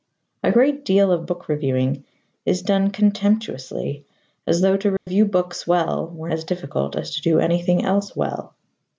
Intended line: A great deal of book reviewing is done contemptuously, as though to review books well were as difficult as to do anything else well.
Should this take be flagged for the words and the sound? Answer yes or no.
yes